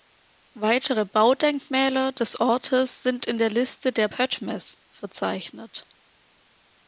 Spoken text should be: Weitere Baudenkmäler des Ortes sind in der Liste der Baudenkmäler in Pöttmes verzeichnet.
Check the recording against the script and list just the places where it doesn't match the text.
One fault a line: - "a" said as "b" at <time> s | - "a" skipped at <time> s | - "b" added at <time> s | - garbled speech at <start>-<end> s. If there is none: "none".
- "Baudenkmäler in" skipped at 4.1 s